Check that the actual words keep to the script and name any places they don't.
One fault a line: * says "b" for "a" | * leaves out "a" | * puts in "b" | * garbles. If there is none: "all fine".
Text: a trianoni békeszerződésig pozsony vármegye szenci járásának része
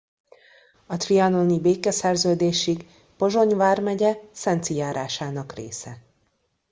all fine